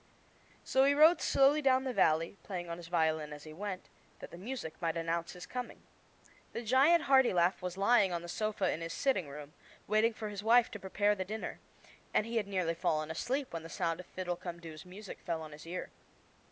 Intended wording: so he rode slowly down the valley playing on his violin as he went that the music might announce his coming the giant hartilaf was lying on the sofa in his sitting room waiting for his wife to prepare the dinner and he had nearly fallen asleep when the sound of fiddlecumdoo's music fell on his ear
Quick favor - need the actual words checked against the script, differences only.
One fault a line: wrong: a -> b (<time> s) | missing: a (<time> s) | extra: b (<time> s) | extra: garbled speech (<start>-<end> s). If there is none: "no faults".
no faults